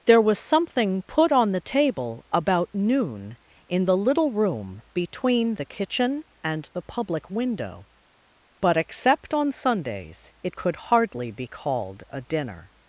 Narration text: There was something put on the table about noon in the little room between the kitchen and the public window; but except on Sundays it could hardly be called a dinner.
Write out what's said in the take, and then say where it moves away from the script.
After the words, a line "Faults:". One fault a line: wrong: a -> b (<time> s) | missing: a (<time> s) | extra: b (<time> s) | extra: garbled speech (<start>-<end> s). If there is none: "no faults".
There was something put on the table about noon in the little room between the kitchen and the public window; but except on Sundays it could hardly be called a dinner.
Faults:
no faults